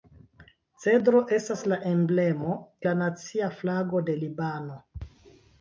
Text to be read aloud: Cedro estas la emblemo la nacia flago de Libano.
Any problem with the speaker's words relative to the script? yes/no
no